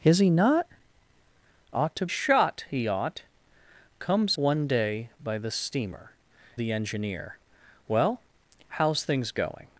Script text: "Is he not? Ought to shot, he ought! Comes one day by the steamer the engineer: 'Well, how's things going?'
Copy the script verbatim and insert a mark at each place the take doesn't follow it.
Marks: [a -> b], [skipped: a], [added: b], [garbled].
"Is he not? Ought to shot, he ought! Comes one day by the steamer the engineer: 'Well, how's things going?'